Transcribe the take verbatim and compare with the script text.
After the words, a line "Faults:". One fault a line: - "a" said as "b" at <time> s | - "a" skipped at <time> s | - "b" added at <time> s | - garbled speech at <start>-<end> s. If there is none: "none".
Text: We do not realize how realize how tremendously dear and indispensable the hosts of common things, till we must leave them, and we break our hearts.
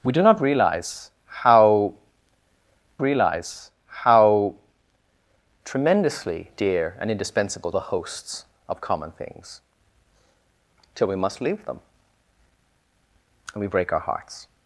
We do not realize how realize how tremendously dear and indispensable the hosts of common things, till we must leave them, and we break our hearts.
Faults:
none